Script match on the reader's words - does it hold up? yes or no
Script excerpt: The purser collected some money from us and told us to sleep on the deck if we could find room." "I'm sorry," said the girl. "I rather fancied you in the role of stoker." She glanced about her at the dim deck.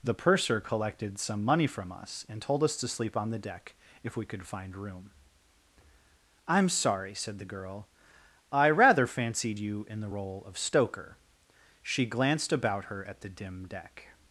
yes